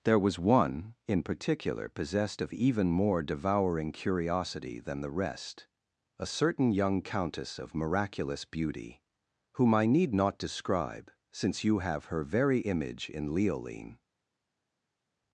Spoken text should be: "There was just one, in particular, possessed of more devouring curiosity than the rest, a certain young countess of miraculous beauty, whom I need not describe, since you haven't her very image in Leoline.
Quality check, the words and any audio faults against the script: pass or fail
fail